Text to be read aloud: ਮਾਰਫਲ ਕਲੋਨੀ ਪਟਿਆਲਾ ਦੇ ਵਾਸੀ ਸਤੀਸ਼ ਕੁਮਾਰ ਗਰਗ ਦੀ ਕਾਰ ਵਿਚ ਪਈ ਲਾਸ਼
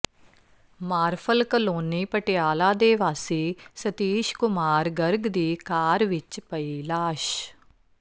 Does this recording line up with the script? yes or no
yes